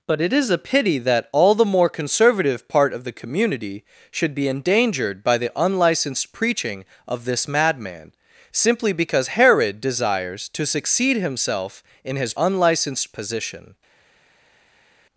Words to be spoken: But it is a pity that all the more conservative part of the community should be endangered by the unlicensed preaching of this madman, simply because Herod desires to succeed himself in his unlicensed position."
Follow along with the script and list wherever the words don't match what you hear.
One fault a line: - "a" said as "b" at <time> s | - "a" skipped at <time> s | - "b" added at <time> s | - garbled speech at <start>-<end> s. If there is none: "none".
none